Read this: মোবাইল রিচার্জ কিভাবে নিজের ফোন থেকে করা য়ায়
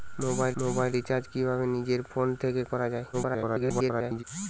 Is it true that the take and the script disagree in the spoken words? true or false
true